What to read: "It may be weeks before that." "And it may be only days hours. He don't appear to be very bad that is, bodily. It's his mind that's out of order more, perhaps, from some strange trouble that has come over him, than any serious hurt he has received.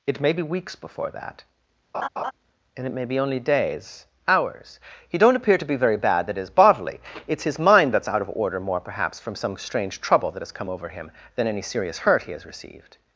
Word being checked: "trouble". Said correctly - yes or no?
yes